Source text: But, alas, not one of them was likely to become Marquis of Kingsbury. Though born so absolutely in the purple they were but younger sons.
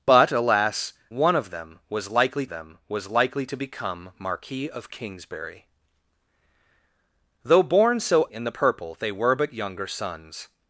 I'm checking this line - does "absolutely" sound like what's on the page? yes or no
no